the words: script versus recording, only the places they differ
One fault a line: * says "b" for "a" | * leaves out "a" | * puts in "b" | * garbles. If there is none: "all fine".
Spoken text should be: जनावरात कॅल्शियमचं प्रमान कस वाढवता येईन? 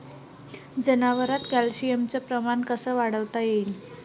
all fine